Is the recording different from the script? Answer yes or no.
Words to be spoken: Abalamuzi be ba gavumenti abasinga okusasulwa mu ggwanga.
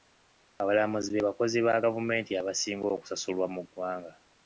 yes